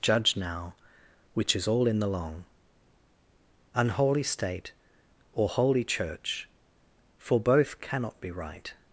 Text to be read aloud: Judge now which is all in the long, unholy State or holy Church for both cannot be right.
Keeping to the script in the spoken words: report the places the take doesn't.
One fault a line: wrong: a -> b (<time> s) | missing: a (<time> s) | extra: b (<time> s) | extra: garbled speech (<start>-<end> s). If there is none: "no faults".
no faults